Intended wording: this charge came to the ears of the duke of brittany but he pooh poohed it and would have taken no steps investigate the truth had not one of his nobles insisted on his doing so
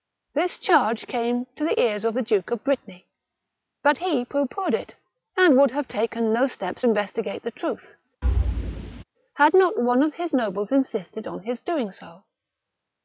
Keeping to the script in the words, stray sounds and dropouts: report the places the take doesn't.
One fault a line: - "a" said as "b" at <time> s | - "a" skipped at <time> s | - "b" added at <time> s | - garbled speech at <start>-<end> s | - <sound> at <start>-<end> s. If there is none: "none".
- thud at 8.2-9.0 s